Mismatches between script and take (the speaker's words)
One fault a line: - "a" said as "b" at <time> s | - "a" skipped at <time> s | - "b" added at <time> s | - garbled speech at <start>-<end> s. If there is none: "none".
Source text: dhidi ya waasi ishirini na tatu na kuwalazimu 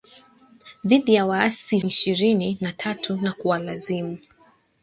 none